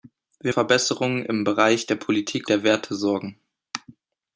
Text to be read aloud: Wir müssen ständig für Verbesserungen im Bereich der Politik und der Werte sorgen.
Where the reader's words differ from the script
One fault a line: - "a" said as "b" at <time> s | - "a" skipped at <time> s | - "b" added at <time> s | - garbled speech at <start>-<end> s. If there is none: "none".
- "müssen ständig für" skipped at 0.5 s
- "und" skipped at 2.5 s